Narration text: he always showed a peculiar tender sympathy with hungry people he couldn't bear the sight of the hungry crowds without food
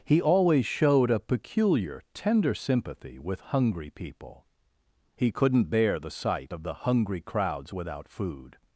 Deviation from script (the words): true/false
false